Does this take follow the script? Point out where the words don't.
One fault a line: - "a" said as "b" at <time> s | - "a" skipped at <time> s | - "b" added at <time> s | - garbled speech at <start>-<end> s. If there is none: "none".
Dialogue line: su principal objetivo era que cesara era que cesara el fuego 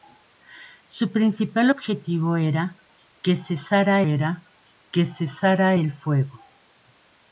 none